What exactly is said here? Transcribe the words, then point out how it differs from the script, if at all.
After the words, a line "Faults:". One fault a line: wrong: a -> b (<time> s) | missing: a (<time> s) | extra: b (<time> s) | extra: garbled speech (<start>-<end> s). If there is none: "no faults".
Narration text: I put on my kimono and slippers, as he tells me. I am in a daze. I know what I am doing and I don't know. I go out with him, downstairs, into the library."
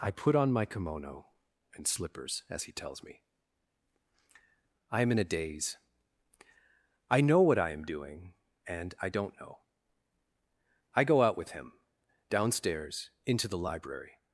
I put on my kimono and slippers, as he tells me. I am in a daze. I know what I am doing and I don't know. I go out with him, downstairs, into the library."
Faults:
no faults